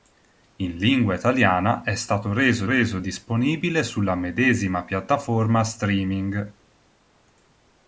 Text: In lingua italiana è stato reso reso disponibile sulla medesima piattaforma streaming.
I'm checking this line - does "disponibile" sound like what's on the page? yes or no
yes